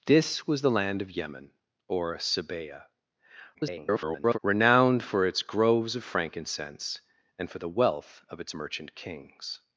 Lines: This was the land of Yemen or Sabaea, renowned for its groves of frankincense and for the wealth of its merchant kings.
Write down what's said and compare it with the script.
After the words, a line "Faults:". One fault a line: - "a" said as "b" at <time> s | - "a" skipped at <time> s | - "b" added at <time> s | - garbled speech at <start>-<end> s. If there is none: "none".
This was the land of Yemen or Sabaea, [garbled] renowned for its groves of frankincense and for the wealth of its merchant kings.
Faults:
- garbled speech at 3.5-4.4 s